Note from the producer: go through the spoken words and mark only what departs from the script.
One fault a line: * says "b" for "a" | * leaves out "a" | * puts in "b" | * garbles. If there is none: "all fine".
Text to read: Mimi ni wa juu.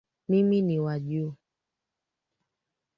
all fine